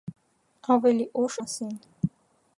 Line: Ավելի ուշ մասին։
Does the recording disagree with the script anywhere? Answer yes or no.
no